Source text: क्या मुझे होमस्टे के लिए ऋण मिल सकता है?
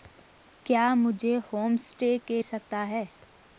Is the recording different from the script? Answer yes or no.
yes